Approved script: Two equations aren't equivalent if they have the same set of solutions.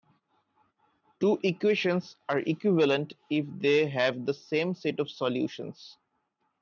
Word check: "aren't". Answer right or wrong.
wrong